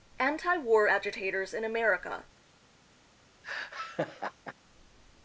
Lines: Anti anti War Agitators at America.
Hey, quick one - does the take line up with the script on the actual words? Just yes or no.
no